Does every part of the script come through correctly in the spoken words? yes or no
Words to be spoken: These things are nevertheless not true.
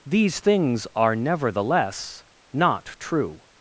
yes